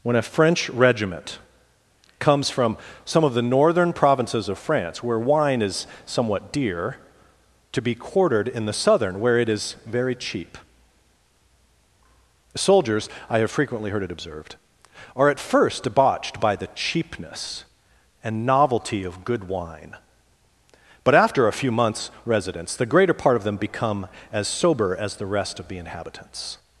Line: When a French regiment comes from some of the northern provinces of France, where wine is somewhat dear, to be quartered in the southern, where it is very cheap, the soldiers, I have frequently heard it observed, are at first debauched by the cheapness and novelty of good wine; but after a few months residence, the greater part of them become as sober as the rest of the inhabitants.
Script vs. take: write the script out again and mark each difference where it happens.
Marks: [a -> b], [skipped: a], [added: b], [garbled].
When a French regiment comes from some of the northern provinces of France, where wine is somewhat dear, to be quartered in the southern, where it is very cheap, [skipped: the] soldiers, I have frequently heard it observed, are at first debauched by the cheapness and novelty of good wine; but after a few months residence, the greater part of them become as sober as the rest of the inhabitants.